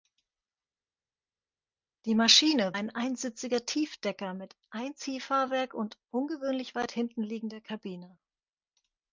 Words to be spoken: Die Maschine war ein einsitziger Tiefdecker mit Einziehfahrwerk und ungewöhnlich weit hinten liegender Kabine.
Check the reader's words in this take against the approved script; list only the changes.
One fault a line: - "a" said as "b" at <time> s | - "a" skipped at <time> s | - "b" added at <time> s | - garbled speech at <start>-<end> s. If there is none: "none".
- "war" skipped at 2.8 s